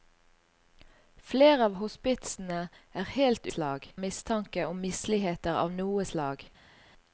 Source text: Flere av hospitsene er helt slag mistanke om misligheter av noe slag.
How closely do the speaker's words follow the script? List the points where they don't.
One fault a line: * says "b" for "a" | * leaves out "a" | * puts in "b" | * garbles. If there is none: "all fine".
all fine